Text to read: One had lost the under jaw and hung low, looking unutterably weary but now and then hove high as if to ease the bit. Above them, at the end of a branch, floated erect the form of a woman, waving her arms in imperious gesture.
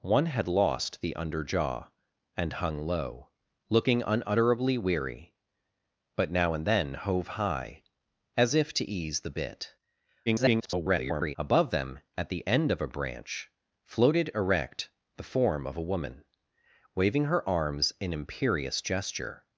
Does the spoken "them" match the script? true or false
true